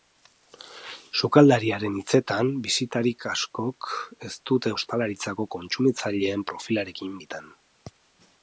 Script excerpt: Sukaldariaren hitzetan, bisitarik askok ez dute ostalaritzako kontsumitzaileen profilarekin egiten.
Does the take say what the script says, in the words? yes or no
yes